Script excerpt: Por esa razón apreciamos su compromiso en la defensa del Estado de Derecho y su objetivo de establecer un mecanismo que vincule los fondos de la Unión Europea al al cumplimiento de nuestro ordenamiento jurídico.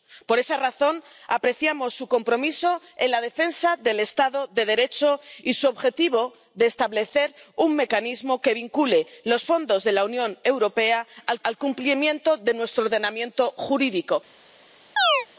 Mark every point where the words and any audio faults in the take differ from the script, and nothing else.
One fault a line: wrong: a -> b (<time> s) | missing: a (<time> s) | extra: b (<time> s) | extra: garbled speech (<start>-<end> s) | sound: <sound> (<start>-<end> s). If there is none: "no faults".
sound: chirp (15.0-15.3 s)